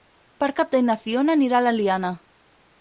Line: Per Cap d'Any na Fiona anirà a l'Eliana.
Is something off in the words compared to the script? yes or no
no